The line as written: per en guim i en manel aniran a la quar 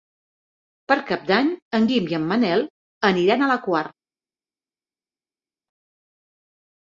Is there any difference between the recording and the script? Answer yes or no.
yes